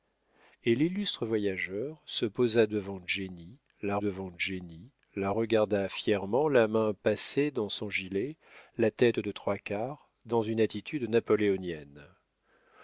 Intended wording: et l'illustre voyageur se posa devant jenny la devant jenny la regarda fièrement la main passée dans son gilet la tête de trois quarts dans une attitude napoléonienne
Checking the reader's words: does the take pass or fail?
pass